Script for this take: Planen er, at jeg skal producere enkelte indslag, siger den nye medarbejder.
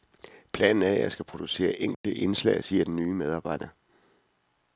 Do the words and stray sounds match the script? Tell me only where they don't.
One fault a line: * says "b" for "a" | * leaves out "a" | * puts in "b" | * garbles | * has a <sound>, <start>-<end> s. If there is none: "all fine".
* has a dropout, 1.9-2.0 s